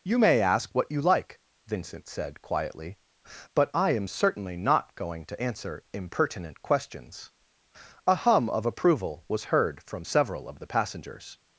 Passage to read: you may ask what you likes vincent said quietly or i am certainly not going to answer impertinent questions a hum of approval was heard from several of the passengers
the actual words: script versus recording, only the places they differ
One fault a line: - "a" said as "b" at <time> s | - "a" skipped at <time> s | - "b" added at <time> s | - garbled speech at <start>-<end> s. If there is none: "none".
- "likes" said as "like" at 1.0 s
- "or" said as "but" at 3.5 s